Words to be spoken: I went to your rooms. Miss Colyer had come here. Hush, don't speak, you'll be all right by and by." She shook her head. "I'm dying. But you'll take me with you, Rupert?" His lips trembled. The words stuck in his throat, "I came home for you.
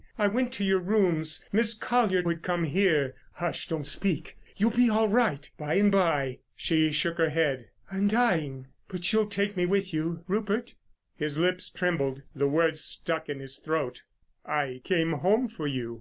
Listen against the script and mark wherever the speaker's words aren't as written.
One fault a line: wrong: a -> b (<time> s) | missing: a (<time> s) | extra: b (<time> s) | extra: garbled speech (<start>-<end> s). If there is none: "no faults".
no faults